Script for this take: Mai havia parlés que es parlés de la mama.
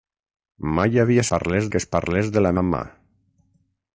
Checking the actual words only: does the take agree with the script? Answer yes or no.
yes